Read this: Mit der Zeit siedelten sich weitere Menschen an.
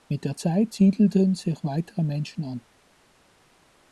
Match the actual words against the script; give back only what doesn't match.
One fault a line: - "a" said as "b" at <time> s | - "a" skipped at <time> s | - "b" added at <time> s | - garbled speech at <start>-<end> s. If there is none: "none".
none